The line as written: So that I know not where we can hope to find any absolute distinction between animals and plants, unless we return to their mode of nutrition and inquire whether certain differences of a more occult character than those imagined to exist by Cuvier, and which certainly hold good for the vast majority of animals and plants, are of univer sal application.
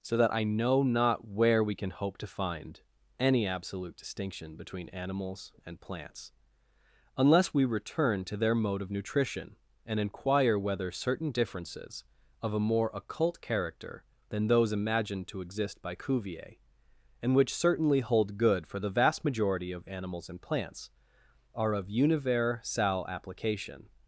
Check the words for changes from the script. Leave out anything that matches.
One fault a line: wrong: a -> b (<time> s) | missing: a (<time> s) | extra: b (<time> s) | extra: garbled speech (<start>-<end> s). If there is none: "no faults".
no faults